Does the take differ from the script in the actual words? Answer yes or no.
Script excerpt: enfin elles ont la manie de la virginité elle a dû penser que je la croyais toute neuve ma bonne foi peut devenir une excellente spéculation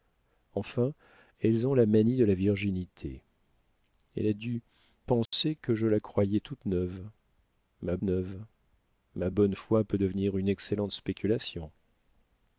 yes